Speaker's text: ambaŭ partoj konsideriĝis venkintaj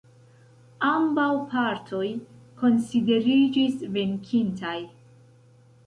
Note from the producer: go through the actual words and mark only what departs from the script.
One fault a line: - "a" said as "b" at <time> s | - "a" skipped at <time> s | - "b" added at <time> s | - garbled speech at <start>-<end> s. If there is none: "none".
none